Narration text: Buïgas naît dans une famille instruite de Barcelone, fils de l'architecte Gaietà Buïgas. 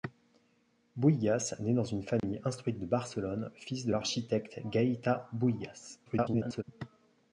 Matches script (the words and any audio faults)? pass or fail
fail